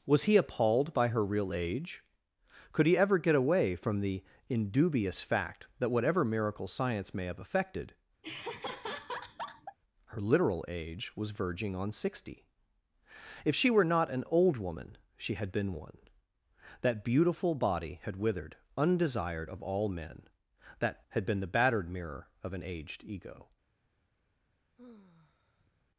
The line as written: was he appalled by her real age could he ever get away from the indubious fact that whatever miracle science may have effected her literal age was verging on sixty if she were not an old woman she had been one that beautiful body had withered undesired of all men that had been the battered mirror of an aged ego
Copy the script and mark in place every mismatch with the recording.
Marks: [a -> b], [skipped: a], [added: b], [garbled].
was he appalled by her real age could he ever get away from the indubious fact that whatever miracle science may have effected her literal age was verging on sixty if she were not an old woman she had been one that beautiful body had withered undesired of all men that had been the battered mirror of an aged ego